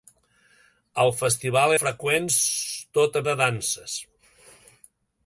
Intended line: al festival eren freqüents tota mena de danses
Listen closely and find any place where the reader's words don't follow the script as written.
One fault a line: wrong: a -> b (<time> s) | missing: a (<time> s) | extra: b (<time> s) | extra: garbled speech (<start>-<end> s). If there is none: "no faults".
missing: eren (1.7 s)
missing: mena (3.2 s)